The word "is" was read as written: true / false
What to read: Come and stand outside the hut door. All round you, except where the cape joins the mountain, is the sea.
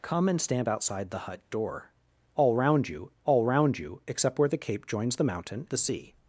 false